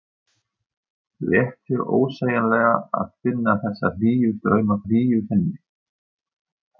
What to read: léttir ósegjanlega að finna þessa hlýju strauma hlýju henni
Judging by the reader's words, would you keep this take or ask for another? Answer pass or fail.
pass